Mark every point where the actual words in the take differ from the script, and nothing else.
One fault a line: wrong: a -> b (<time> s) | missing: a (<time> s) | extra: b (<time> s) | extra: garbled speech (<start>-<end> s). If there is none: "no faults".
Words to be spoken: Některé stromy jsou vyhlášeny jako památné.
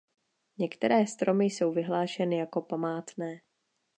no faults